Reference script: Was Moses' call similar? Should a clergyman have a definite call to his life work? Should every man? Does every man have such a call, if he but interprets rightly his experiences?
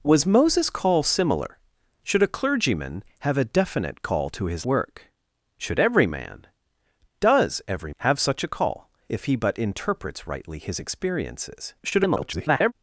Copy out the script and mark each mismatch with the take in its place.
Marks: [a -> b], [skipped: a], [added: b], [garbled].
Was Moses' call similar? Should a clergyman have a definite call to his [skipped: life] work? Should every man? Does every [skipped: man] have such a call, if he but interprets rightly his experiences? [garbled]